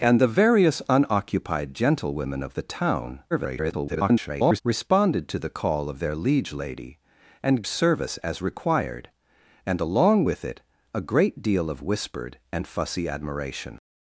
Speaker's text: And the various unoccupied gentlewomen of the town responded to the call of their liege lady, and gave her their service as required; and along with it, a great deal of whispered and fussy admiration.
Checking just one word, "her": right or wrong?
wrong